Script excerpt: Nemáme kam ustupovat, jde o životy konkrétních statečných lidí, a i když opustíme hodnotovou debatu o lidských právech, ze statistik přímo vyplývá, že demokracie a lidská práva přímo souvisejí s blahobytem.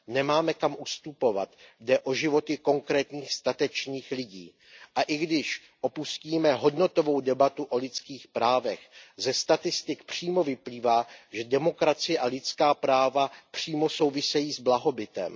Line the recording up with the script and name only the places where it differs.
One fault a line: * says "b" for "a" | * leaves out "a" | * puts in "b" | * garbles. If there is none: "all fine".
all fine